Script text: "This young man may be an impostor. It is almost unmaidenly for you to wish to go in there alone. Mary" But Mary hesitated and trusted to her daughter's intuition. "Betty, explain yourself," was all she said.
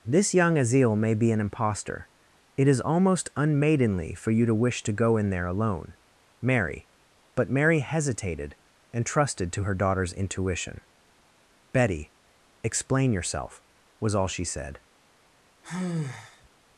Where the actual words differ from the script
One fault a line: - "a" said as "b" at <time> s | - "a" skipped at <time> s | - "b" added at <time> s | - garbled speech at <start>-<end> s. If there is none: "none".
- "man" said as "azil" at 0.6 s